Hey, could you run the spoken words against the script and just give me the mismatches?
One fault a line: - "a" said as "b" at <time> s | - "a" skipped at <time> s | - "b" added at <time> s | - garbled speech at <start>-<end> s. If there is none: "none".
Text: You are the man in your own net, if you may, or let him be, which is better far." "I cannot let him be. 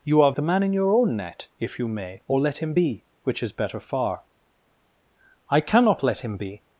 none